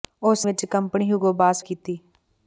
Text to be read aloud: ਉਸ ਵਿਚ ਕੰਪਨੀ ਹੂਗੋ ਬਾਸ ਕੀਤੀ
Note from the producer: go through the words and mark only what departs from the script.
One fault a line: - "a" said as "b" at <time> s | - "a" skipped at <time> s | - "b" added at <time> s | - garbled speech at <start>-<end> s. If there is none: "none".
none